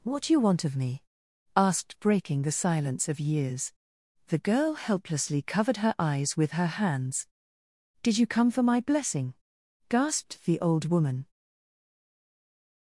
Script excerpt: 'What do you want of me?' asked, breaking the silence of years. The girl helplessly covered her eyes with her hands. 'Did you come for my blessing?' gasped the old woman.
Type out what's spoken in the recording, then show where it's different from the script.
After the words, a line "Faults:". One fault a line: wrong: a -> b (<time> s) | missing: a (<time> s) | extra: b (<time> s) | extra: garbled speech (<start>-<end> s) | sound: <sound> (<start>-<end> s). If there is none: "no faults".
'What do you want of me?' asked, breaking the silence of years. The girl helplessly covered her eyes with her hands. 'Did you come for my blessing?' gasped the old woman.
Faults:
no faults